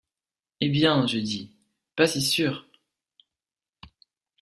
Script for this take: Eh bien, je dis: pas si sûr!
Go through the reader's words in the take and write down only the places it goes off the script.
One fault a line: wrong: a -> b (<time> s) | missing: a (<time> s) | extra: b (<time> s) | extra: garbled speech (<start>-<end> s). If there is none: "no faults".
no faults